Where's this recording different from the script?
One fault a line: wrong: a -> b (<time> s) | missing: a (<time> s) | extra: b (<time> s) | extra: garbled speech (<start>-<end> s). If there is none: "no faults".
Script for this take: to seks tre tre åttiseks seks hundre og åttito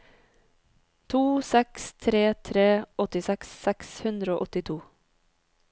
no faults